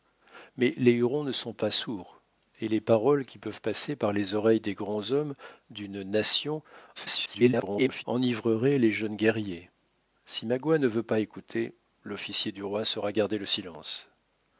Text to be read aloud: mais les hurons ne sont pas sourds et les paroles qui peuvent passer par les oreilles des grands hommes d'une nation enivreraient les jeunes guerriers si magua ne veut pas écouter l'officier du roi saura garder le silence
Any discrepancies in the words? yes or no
yes